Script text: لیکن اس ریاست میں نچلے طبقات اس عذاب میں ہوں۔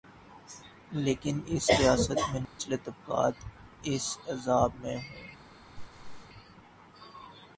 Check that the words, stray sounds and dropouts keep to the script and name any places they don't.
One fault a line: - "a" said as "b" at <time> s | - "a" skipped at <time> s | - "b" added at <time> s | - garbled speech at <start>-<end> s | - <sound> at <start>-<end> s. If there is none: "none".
- dropout at 2.5-2.6 s
- laugh at 5.8-6.3 s